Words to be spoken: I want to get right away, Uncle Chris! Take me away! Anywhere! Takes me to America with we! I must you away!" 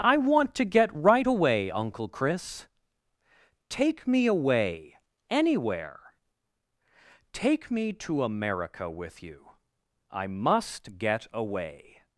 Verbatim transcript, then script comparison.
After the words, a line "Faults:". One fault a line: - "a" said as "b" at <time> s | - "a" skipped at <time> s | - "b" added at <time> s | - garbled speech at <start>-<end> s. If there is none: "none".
I want to get right away, Uncle Chris! Take me away! Anywhere! Take me to America with you! I must get away!"
Faults:
- "Takes" said as "Take" at 7.3 s
- "we" said as "you" at 9.2 s
- "you" said as "get" at 11.0 s